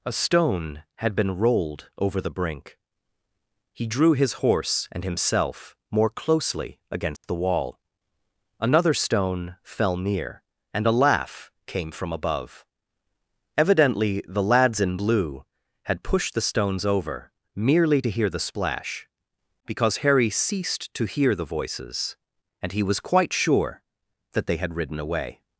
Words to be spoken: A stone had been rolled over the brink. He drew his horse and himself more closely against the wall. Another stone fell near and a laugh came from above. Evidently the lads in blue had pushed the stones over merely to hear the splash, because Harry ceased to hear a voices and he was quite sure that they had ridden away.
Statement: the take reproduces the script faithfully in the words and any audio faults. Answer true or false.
false